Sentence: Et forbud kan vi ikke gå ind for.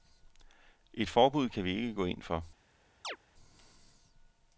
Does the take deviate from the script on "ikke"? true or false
false